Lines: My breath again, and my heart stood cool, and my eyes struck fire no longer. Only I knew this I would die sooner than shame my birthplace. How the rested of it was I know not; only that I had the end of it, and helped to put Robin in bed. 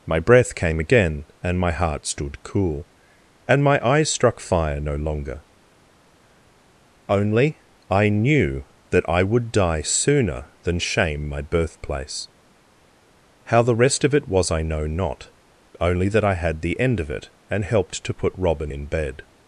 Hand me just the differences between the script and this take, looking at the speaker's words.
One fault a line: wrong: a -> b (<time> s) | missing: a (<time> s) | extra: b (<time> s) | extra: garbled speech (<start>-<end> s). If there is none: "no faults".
extra: came (0.6 s)
wrong: this -> that (8.9 s)
wrong: rested -> rest (13.8 s)